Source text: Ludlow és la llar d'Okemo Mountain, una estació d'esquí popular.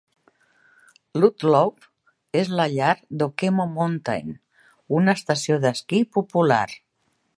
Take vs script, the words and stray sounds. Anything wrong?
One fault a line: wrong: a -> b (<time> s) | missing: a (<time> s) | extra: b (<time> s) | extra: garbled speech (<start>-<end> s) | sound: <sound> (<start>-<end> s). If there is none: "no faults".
no faults